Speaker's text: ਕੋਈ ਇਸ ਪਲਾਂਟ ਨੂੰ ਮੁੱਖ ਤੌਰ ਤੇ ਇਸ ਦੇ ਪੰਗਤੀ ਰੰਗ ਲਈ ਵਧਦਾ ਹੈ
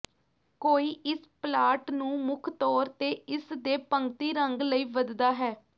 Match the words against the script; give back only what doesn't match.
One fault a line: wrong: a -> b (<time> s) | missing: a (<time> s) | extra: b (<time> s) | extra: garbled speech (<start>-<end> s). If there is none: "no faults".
no faults